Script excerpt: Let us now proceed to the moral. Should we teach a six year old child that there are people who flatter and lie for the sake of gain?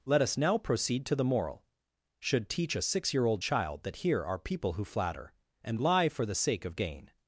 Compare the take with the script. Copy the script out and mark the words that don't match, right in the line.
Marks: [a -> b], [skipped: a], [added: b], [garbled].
Let us now proceed to the moral. Should [skipped: we] teach a six year old child that [there -> here] are people who flatter and lie for the sake of gain?